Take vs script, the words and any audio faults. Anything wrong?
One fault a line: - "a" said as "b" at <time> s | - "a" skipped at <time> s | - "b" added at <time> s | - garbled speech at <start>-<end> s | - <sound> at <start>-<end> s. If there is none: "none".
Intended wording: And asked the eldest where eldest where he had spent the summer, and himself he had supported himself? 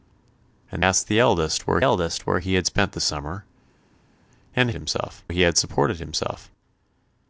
none